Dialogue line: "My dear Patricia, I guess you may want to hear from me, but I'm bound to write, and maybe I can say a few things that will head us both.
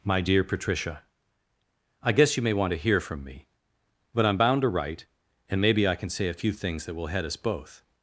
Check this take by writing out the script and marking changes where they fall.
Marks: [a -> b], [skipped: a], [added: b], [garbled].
"My dear Patricia, I guess you may want to hear from me, but I'm bound to write, and maybe I can say a few things that will head us both.